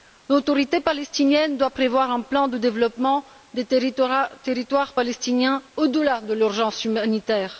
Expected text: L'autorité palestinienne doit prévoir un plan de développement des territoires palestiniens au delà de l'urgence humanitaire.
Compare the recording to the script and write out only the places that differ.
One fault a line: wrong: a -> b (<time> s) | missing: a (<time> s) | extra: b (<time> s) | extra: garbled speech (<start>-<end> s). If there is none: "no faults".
no faults